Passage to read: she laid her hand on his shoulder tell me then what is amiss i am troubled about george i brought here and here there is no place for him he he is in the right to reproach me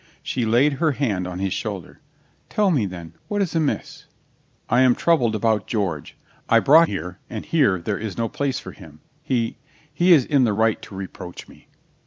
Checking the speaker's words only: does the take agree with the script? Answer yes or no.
yes